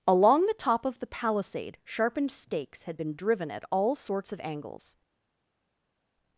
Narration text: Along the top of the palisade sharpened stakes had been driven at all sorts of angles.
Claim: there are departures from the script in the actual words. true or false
false